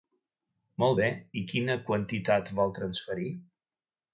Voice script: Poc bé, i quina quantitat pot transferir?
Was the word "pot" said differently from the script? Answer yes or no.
yes